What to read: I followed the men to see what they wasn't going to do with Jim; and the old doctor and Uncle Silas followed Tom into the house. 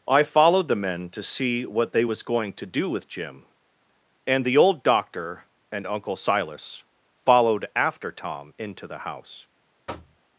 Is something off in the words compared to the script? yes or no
yes